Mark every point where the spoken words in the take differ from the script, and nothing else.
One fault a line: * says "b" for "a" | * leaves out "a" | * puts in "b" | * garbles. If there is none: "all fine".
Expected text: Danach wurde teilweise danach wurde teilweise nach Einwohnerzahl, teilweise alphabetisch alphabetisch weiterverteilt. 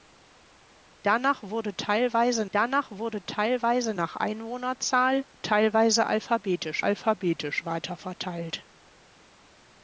all fine